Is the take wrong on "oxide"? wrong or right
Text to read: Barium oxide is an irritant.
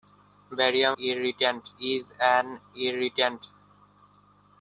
wrong